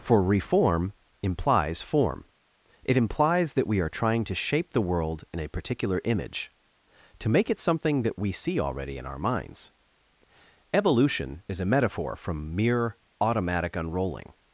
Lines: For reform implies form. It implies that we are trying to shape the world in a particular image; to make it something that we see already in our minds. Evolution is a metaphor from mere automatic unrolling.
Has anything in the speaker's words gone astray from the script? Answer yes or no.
no